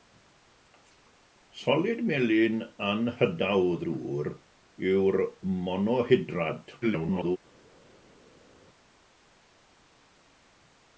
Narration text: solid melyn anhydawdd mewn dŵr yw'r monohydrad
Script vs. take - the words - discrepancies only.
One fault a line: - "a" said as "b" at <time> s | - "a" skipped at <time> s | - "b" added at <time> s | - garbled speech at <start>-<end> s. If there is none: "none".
- "mewn" skipped at 3.8 s
- garbled speech at 6.8-7.4 s